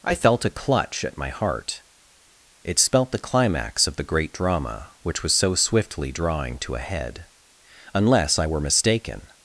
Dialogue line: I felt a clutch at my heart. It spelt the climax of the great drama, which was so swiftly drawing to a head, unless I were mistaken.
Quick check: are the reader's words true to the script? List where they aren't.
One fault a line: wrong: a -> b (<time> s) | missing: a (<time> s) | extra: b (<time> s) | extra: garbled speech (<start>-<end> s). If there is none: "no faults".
no faults